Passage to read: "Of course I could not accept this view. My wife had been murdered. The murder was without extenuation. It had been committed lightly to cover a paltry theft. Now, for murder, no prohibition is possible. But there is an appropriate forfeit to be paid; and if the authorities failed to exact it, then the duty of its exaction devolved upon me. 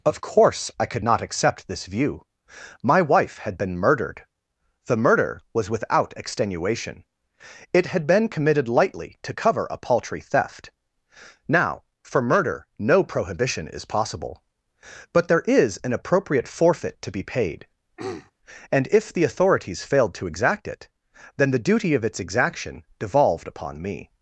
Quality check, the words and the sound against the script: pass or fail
fail